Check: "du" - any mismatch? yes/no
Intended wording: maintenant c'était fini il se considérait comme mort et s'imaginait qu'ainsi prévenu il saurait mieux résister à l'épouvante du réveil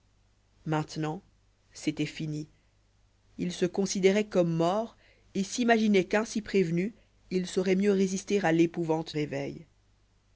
yes